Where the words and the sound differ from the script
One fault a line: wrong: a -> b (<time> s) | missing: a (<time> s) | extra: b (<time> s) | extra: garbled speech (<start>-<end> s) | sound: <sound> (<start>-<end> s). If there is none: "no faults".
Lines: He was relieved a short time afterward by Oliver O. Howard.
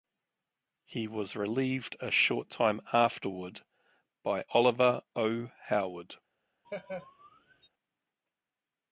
sound: laugh (6.6-7.7 s)